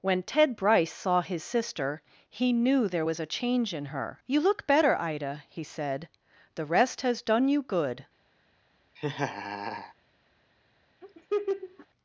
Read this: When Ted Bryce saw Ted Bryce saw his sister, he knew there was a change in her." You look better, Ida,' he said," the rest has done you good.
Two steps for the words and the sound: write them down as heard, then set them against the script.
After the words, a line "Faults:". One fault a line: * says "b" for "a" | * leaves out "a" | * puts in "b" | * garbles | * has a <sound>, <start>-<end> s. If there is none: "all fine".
When Ted Bryce saw his sister, he knew there was a change in her." You look better, Ida,' he said," the rest has done you good.
Faults:
* leaves out "Ted Bryce saw"
* has a laugh, 9.0-9.9 s
* has a laugh, 11.0-11.9 s